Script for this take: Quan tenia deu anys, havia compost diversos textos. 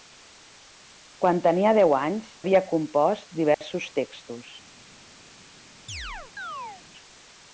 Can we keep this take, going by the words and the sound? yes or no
no